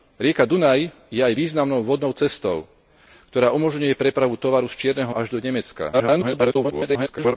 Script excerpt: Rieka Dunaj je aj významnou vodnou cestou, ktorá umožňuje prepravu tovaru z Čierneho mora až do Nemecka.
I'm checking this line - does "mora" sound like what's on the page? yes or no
no